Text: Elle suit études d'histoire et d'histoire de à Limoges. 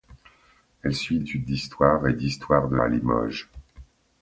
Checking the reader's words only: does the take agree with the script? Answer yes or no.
yes